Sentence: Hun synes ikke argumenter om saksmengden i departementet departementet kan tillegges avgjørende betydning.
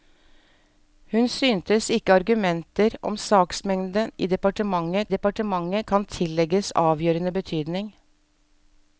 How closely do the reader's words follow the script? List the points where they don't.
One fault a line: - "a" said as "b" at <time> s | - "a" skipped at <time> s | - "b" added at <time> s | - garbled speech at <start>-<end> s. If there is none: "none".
none